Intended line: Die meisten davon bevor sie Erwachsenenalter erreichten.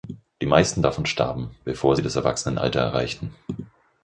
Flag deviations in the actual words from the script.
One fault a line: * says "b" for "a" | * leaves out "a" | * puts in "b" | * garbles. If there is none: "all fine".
* puts in "starben"
* puts in "das"